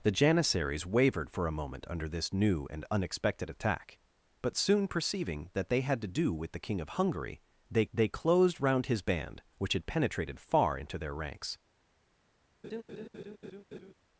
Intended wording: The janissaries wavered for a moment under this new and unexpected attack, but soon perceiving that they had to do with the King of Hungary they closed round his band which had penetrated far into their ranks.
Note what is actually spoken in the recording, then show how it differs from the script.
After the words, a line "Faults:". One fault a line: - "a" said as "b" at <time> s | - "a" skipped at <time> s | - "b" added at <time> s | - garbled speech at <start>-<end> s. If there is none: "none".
The janissaries wavered for a moment under this new and unexpected attack, but soon perceiving that they had to do with the King of Hungary they they closed round his band which had penetrated far into their ranks.
Faults:
- "they" added at 7.9 s